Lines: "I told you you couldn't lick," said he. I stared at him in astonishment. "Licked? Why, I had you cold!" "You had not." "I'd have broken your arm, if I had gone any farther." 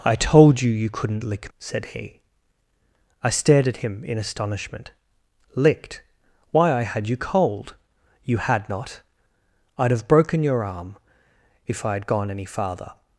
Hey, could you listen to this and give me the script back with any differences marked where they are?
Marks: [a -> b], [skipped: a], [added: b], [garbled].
"I told you you couldn't lick," said he. I stared at him in astonishment. "Licked? Why, I had you cold!" "You had not." "I'd have broken your arm, if I had gone any farther."